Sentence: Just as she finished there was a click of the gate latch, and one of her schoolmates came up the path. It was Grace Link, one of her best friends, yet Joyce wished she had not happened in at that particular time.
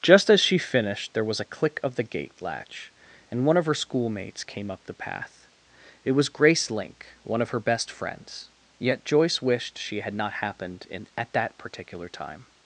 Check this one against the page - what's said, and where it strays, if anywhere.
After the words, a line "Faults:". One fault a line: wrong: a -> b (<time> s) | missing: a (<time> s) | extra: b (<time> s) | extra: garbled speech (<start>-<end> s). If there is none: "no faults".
Just as she finished there was a click of the gate latch, and one of her schoolmates came up the path. It was Grace Link, one of her best friends, yet Joyce wished she had not happened in at that particular time.
Faults:
no faults